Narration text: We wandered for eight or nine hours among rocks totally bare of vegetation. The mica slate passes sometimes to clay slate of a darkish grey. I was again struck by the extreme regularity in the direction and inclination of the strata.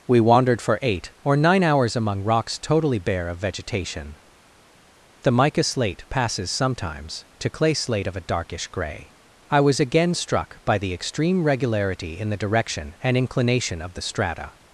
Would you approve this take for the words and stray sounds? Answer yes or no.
yes